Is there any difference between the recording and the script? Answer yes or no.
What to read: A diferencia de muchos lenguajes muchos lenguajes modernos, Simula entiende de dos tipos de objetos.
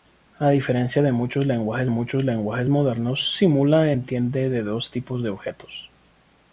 no